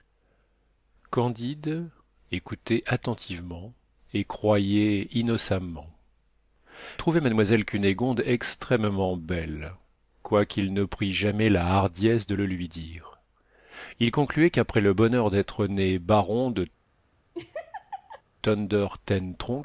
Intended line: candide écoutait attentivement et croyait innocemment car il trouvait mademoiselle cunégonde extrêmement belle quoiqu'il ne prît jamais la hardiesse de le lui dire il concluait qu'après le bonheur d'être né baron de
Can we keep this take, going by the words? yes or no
no